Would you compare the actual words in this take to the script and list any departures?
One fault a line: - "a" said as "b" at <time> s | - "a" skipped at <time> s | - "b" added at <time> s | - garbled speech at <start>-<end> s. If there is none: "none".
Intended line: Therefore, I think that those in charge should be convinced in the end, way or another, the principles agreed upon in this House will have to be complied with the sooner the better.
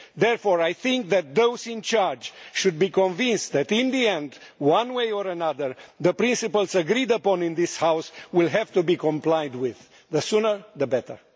- "that" added at 3.5 s
- "one" added at 4.6 s